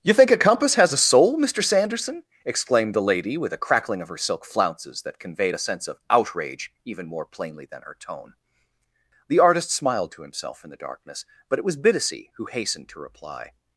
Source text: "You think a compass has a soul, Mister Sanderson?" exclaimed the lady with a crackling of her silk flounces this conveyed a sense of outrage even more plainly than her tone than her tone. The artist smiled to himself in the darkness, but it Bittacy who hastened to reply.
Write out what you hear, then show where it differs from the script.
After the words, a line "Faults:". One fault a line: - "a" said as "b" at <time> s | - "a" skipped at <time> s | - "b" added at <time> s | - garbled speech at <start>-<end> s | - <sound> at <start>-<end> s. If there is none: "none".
"You think a compass has a soul, Mister Sanderson?" exclaimed the lady with a crackling of her silk flounces that conveyed a sense of outrage even more plainly than her tone. The artist smiled to himself in the darkness, but it was Bittacy who hastened to reply.
Faults:
- "this" said as "that" at 5.0 s
- "than her tone" skipped at 8.3 s
- "was" added at 11.6 s